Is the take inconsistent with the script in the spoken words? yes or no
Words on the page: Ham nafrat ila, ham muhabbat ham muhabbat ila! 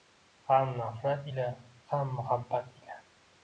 yes